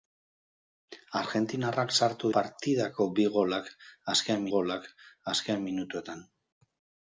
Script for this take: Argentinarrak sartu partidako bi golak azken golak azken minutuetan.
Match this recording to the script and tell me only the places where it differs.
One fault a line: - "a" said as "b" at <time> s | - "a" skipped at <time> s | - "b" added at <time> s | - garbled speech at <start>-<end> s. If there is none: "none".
none